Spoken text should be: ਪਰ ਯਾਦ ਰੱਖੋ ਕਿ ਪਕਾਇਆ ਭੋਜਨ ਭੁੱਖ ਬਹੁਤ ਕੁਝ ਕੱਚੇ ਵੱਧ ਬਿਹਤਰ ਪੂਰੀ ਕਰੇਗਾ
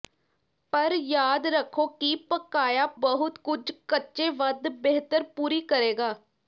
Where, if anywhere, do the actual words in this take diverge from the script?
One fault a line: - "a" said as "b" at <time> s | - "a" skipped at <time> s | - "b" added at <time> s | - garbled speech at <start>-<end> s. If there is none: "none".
- "ਭੋਜਨ ਭੁੱਖ" skipped at 2.9 s